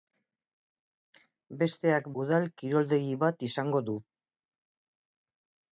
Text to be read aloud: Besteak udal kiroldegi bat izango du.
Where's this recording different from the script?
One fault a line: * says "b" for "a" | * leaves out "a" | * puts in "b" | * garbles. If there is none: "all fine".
all fine